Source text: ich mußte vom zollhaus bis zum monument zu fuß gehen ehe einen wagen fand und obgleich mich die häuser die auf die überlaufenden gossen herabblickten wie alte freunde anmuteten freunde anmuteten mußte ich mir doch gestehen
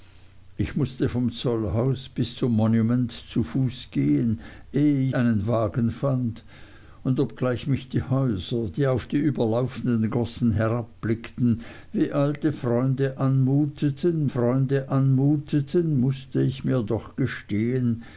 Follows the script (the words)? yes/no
yes